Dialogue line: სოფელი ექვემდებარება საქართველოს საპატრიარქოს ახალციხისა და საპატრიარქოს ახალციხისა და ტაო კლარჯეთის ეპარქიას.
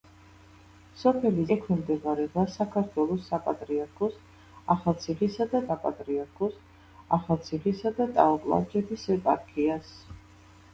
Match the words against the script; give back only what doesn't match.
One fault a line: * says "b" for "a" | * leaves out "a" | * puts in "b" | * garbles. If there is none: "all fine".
all fine